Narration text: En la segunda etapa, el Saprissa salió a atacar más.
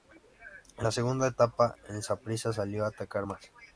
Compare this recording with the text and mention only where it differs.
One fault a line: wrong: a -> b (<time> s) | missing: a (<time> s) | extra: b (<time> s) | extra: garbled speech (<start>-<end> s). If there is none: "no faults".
no faults